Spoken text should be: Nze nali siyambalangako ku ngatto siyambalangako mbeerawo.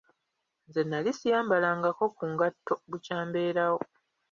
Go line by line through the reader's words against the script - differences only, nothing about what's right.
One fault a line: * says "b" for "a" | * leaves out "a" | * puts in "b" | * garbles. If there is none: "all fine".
* says "bukya" for "siyambalangako"